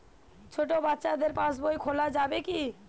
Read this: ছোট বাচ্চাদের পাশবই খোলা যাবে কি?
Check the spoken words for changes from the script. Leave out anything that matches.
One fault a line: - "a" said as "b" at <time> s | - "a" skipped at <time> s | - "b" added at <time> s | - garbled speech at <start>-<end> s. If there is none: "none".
none